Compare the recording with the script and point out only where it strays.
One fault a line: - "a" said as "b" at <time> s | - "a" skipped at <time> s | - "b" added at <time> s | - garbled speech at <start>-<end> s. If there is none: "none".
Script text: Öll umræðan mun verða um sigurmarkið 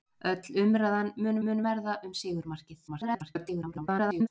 - "mun" added at 1.5 s
- garbled speech at 2.9-4.3 s